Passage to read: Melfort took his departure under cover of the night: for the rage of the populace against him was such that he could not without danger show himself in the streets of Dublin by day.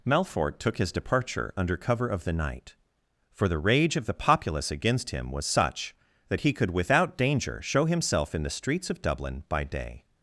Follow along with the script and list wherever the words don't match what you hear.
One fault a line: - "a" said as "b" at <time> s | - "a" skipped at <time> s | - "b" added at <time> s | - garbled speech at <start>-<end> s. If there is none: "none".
- "not" skipped at 6.7 s